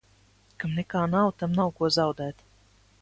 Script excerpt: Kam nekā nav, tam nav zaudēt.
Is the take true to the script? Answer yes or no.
no